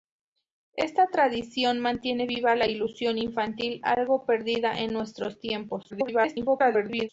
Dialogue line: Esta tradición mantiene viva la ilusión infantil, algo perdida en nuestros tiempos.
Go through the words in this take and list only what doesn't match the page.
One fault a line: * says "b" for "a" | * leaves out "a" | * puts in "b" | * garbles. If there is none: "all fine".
* garbles